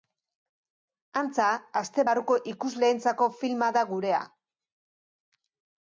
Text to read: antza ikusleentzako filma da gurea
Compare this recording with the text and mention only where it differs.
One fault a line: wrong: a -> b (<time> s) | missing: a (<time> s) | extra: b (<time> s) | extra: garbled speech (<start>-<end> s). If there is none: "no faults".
extra: aste barruko (1.8 s)